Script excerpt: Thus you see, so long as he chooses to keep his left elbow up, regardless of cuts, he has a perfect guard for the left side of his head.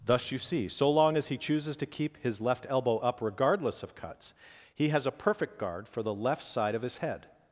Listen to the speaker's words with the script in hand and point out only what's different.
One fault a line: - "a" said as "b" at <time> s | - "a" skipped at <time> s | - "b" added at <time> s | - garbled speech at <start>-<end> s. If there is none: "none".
none